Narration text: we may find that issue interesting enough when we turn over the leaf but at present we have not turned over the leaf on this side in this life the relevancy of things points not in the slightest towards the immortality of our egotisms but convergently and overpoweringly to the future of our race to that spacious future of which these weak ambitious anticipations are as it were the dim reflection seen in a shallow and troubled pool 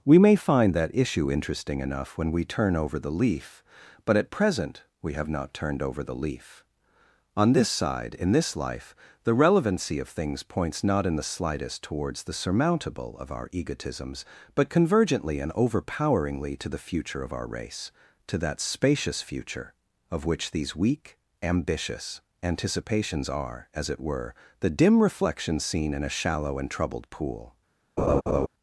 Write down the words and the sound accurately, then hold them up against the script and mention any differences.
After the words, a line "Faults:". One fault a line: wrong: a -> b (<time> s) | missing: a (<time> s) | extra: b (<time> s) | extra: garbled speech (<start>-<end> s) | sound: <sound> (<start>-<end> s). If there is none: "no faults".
we may find that issue interesting enough when we turn over the leaf but at present we have not turned over the leaf on this side in this life the relevancy of things points not in the slightest towards the surmountable of our egotisms but convergently and overpoweringly to the future of our race to that spacious future of which these weak ambitious anticipations are as it were the dim reflection seen in a shallow and troubled pool
Faults:
wrong: immortality -> surmountable (12.3 s)
sound: laugh (28.0-28.5 s)